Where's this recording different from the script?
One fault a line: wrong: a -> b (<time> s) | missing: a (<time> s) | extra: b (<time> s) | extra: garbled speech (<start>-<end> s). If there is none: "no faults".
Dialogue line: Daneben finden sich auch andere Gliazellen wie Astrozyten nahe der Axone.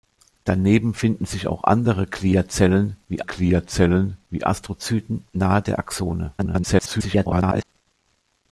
extra: Gliazellen wie (3.2 s)
extra: garbled speech (6.4-7.6 s)